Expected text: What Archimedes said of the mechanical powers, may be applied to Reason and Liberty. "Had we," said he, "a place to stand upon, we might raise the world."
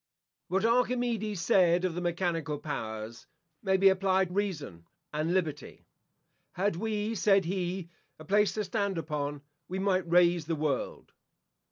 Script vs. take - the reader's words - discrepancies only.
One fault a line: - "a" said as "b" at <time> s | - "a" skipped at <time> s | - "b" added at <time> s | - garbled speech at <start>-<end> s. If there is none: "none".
- "to" skipped at 4.3 s